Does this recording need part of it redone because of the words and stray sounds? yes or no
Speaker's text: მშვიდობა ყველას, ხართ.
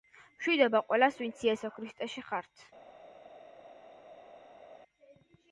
yes